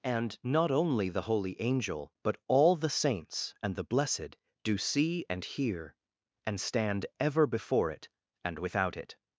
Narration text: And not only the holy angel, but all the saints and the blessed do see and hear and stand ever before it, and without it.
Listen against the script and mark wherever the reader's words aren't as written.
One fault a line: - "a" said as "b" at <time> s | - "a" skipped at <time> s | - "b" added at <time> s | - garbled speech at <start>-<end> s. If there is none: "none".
none